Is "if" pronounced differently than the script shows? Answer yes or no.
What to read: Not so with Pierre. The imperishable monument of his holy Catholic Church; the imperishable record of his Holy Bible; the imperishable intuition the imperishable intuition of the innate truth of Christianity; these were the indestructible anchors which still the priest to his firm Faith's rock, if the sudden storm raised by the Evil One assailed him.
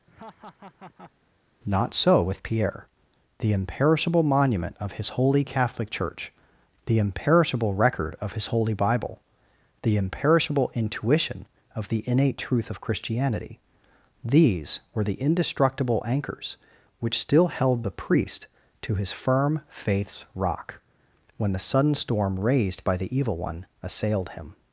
yes